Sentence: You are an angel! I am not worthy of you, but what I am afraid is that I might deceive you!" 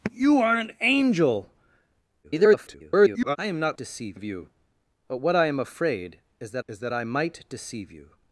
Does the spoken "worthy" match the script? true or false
false